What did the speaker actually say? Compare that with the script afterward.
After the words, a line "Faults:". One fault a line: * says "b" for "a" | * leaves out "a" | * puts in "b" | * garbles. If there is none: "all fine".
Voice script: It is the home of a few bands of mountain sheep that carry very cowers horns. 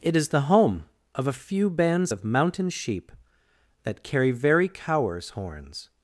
It is the home of a few bands of mountain sheep that carry very cowers horns.
Faults:
all fine